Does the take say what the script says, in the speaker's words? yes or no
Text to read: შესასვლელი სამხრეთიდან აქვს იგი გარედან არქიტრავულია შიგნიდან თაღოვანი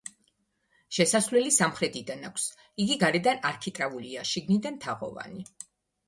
yes